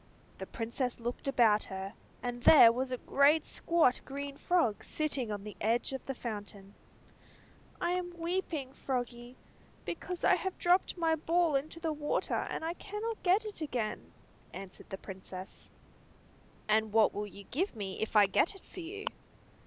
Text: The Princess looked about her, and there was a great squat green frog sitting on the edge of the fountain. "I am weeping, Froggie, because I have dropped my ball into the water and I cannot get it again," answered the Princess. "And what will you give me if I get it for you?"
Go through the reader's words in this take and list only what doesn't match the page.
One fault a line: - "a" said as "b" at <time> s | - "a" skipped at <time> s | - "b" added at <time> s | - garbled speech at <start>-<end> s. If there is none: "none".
none